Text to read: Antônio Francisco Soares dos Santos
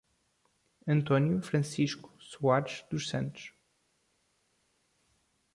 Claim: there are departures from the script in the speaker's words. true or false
false